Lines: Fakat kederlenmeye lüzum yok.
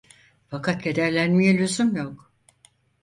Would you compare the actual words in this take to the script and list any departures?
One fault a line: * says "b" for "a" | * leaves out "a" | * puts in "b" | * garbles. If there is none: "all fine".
all fine